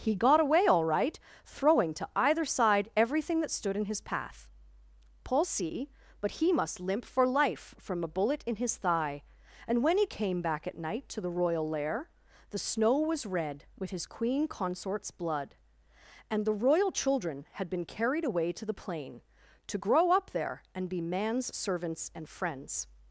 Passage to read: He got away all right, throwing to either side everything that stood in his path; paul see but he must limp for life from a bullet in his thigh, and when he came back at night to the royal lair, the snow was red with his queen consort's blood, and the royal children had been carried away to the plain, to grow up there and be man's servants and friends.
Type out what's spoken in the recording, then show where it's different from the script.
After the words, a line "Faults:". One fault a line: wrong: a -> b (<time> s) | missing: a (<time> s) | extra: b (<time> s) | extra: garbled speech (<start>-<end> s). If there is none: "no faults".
He got away all right, throwing to either side everything that stood in his path; paul see but he must limp for life from a bullet in his thigh, and when he came back at night to the royal lair, the snow was red with his queen consort's blood, and the royal children had been carried away to the plain, to grow up there and be man's servants and friends.
Faults:
no faults